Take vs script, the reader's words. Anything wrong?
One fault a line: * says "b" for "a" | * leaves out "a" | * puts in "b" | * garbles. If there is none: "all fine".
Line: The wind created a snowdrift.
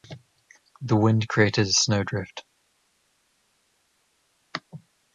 all fine